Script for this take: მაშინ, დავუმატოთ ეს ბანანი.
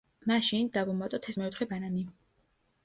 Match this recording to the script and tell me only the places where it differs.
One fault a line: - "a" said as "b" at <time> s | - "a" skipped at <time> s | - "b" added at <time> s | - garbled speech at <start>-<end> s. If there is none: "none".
- "მეოთხე" added at 1.4 s